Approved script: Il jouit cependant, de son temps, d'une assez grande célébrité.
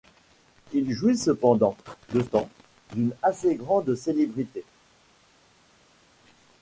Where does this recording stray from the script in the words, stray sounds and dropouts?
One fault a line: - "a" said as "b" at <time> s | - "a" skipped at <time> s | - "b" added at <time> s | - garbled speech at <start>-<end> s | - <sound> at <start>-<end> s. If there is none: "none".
- "son" skipped at 2.2 s